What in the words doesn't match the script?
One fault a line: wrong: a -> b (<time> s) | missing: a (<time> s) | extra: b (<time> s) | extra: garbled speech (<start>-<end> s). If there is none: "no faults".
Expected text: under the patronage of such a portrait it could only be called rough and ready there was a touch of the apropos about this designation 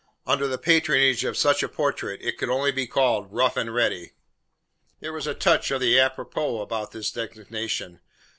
no faults